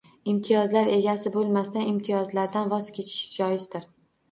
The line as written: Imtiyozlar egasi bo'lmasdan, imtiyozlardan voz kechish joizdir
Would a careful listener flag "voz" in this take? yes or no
no